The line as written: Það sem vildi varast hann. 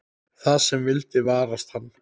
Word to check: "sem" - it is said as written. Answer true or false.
true